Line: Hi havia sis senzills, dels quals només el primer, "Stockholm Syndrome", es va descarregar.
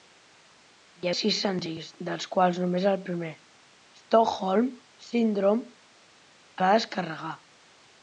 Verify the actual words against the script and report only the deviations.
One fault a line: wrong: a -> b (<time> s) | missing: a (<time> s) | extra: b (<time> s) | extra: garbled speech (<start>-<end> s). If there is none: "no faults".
missing: havia (1.1 s)
missing: es (5.7 s)